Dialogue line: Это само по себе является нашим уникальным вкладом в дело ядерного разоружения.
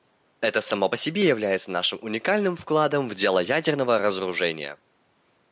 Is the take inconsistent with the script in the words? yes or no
no